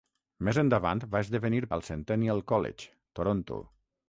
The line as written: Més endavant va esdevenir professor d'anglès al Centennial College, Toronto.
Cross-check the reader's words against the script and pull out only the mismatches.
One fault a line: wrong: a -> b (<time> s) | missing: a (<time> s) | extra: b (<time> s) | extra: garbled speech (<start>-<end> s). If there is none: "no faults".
missing: professor d'anglès (1.6 s)